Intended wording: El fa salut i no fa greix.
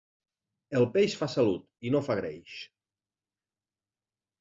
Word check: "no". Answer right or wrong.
right